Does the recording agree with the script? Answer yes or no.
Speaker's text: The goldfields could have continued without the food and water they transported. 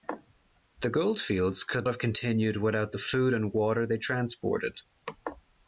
yes